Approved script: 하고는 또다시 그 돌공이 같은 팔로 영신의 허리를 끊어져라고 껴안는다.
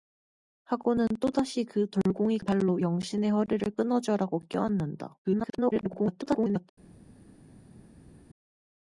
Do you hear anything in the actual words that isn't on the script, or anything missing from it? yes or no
yes